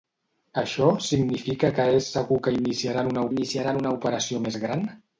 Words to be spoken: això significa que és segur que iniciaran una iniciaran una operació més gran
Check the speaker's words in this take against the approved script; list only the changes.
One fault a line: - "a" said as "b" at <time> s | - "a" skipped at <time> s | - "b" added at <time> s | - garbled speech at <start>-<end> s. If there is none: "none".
none